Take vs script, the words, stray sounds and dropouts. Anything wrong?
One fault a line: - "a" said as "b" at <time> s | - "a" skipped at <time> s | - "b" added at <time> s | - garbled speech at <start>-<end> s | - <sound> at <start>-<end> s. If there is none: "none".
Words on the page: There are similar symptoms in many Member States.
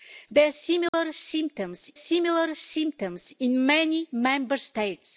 - dropout at 0.9-0.9 s
- "similar symptoms" added at 1.9 s